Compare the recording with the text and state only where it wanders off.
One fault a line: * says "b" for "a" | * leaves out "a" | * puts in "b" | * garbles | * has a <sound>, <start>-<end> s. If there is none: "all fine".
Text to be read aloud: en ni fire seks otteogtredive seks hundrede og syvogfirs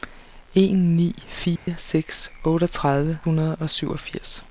* has a dropout, 1.6-1.7 s
* leaves out "seks"